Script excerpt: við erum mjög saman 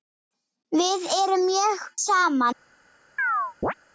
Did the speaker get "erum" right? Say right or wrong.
right